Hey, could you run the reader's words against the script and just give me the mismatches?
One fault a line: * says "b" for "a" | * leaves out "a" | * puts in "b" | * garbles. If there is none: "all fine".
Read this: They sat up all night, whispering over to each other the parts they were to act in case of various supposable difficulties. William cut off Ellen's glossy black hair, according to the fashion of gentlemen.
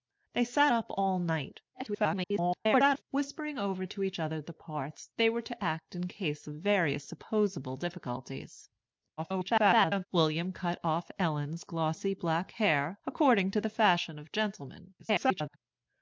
* garbles
* garbles
* garbles